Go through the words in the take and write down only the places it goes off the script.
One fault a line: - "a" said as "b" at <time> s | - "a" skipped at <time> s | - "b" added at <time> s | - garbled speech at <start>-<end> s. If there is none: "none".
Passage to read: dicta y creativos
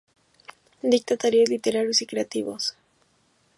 - "talleres literarios" added at 1.1 s